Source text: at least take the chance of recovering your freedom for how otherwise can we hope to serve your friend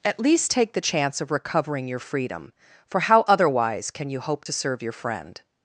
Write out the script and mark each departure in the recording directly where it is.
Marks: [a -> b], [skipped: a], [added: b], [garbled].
at least take the chance of recovering your freedom for how otherwise can [we -> you] hope to serve your friend